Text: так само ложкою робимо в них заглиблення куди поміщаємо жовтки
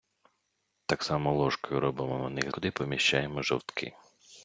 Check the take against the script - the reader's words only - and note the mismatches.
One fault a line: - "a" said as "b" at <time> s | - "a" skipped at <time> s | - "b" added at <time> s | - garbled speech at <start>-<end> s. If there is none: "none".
- "заглиблення" skipped at 2.5 s